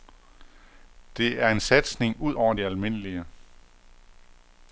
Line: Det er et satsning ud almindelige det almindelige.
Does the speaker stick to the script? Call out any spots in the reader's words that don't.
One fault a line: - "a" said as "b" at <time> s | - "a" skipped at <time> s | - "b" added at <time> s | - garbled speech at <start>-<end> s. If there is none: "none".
- "et" said as "en" at 1.5 s
- "almindelige" said as "over" at 2.3 s